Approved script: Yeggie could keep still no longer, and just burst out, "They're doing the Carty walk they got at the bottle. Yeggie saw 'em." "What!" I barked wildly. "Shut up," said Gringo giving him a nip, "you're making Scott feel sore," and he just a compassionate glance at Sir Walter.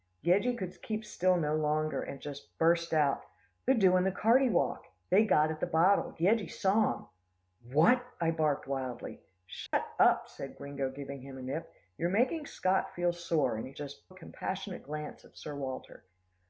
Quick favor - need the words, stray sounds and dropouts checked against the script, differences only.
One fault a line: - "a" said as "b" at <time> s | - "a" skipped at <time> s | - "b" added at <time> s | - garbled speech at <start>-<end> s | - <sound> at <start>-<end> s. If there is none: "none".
- dropout at 9.7-9.7 s